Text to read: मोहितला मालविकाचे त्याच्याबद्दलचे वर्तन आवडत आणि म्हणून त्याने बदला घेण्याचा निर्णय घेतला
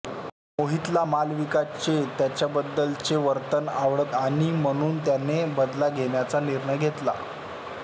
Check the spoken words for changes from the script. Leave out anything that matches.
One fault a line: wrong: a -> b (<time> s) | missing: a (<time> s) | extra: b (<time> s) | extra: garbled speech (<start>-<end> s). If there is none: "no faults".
no faults